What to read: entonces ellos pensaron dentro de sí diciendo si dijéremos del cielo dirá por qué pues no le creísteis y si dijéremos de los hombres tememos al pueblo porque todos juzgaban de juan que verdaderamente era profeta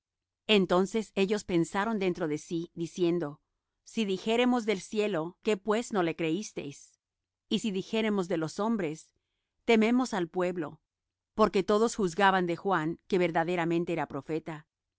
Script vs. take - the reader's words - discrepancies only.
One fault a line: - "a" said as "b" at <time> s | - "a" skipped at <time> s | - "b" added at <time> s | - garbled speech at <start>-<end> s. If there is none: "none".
- "dirá por" skipped at 5.4 s